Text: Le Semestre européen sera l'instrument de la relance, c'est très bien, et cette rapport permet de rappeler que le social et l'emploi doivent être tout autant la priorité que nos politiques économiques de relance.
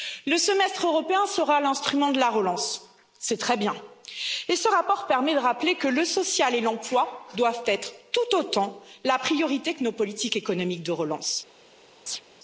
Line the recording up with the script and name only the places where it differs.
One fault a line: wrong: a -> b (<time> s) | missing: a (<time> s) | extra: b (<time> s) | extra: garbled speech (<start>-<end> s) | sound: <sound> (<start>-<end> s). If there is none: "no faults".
wrong: cette -> ce (4.5 s)
sound: chirp (12.1-12.2 s)